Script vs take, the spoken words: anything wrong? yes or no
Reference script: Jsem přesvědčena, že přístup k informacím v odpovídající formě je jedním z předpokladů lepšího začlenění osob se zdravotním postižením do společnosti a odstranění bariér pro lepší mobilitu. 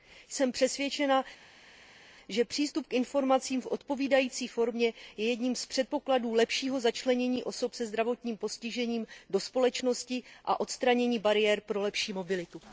no